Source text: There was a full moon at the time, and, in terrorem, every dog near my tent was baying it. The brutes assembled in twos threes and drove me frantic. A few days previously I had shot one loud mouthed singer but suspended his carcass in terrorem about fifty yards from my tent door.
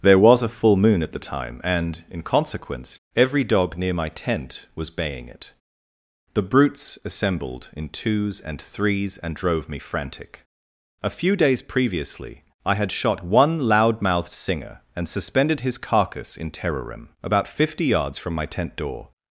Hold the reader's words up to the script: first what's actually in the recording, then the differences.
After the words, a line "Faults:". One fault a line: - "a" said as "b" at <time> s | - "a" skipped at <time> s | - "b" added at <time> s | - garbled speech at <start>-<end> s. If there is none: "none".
There was a full moon at the time, and, in consequence, every dog near my tent was baying it. The brutes assembled in twos and threes and drove me frantic. A few days previously I had shot one loud mouthed singer and suspended his carcass in terrorem about fifty yards from my tent door.
Faults:
- "terrorem" said as "consequence" at 2.2 s
- "and" added at 8.4 s
- "but" said as "and" at 14.9 s